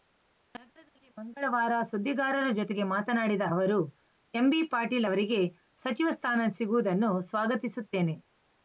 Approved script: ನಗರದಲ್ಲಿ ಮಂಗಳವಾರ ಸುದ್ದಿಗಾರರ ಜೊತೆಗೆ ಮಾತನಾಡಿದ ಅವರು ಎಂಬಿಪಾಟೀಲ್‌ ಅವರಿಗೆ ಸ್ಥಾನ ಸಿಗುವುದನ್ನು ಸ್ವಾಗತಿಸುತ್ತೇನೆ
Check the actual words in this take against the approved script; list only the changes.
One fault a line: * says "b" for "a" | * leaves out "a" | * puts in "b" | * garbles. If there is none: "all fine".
* puts in "ಸಚಿವ"